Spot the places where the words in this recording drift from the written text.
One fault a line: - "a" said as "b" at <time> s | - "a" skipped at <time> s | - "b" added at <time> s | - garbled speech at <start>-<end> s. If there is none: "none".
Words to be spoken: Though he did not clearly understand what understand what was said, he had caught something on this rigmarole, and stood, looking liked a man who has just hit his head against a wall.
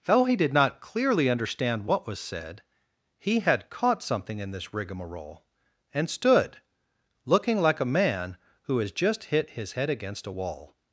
- "understand what" skipped at 2.1 s
- "on" said as "in" at 4.4 s
- "liked" said as "like" at 7.6 s